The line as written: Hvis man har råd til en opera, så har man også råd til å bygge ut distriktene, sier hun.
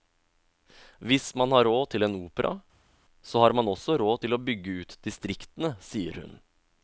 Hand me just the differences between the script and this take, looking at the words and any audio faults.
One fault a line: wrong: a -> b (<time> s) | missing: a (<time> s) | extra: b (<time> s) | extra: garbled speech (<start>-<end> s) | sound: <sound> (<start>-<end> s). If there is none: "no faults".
no faults